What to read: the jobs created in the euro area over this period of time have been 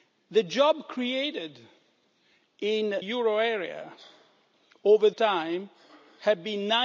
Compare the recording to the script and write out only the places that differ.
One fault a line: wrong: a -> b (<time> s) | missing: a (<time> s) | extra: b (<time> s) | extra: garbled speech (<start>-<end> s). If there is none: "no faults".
missing: the (3.0 s)
missing: this period of (5.1 s)